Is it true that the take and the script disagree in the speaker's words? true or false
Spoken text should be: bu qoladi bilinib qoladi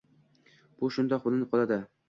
true